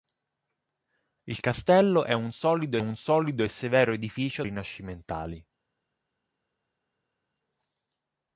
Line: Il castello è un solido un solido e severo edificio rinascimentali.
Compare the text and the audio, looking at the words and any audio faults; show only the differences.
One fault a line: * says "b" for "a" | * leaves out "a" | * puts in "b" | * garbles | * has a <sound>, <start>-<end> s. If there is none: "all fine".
all fine